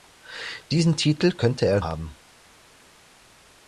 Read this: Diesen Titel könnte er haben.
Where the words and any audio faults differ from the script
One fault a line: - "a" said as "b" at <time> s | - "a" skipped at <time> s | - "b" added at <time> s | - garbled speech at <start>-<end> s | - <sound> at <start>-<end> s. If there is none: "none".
none